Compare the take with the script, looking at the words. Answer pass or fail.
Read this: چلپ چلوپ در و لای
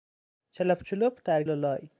pass